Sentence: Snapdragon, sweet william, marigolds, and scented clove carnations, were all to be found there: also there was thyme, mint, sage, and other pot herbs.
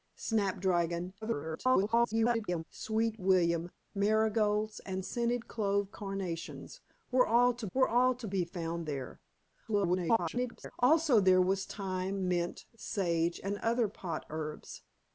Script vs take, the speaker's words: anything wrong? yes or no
yes